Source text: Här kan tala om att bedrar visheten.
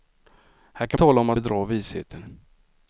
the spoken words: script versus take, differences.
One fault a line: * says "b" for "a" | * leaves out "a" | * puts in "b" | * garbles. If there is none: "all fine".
all fine